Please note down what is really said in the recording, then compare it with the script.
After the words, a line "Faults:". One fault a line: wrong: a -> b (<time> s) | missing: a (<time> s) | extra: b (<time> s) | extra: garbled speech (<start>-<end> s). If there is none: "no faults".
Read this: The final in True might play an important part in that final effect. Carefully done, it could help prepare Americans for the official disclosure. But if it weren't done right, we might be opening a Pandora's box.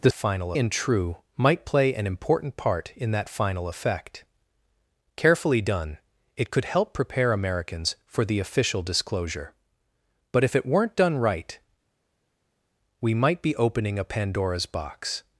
The final in True might play an important part in that final effect. Carefully done, it could help prepare Americans for the official disclosure. But if it weren't done right, we might be opening a Pandora's box.
Faults:
no faults